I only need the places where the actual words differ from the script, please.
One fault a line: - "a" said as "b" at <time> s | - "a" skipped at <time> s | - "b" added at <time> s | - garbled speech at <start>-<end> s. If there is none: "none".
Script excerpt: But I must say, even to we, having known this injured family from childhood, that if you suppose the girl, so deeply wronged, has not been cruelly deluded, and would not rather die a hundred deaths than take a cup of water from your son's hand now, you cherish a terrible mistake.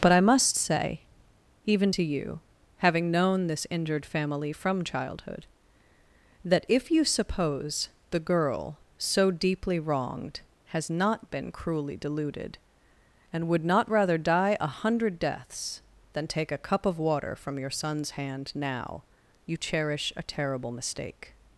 - "we" said as "you" at 2.0 s